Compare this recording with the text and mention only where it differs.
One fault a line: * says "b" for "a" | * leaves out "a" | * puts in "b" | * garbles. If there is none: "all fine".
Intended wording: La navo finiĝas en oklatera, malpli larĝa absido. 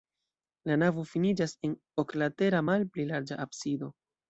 all fine